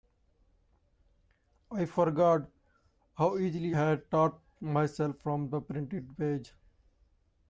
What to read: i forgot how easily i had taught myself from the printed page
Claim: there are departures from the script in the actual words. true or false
true